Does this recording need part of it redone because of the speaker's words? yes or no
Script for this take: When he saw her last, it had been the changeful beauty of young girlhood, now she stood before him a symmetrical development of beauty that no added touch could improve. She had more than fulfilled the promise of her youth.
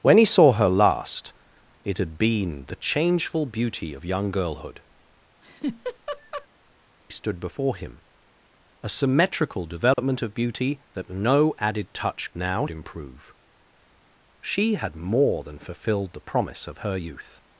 yes